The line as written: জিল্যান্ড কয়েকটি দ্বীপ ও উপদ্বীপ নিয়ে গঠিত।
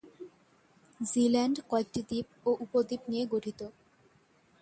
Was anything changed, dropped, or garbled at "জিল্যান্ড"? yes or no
no